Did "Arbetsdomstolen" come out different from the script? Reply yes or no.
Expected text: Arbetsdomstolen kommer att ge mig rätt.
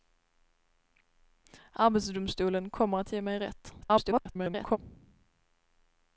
no